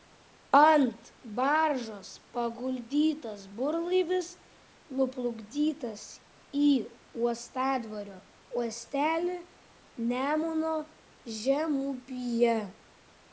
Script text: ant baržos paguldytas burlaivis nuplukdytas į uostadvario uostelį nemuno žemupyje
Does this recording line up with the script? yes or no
yes